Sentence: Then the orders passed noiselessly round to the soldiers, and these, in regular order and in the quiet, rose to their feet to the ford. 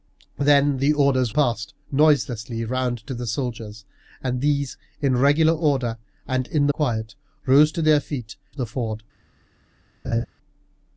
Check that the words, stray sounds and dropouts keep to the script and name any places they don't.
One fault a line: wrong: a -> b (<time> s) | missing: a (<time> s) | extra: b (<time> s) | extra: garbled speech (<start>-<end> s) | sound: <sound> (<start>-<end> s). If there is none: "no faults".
sound: laugh (10.0-10.3 s)